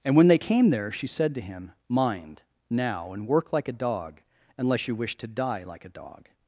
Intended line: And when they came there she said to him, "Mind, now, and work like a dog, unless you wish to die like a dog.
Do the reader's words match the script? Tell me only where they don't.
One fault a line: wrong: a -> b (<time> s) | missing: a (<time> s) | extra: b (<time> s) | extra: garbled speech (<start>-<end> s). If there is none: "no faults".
no faults